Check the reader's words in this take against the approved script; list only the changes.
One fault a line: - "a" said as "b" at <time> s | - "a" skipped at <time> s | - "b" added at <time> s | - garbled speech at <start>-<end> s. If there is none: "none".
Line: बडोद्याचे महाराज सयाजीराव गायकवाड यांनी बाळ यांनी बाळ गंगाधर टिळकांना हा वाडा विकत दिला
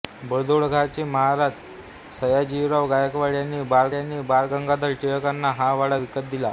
none